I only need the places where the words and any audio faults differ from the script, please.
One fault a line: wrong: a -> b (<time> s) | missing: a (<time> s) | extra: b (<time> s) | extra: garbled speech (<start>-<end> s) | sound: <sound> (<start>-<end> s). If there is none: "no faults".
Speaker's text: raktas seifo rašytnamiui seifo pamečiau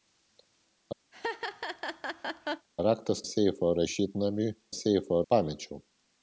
sound: laugh (1.1-2.7 s)